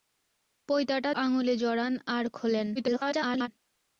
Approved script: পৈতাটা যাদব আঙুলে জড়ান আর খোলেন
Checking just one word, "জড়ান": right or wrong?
right